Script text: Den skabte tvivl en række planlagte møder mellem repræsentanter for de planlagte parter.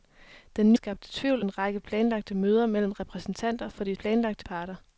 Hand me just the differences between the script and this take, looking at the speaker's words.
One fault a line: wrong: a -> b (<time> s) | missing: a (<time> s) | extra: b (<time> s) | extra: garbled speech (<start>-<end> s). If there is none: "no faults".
no faults